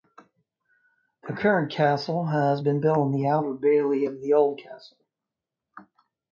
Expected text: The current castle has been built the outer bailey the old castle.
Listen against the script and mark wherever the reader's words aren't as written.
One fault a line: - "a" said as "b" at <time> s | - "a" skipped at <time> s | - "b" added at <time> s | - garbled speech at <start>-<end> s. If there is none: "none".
- "on" added at 3.0 s
- "of" added at 4.0 s